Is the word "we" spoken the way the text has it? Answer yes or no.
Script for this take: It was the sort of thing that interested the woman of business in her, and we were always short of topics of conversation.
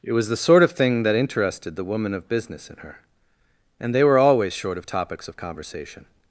no